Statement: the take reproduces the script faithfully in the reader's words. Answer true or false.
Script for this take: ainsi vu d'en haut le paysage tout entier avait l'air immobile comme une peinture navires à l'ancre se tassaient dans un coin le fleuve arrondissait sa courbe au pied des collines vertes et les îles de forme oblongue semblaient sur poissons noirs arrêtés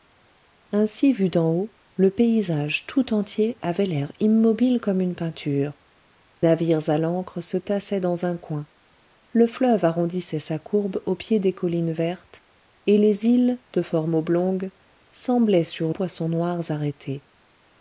true